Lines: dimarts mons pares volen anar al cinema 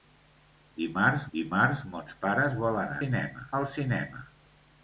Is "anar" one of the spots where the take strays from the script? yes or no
yes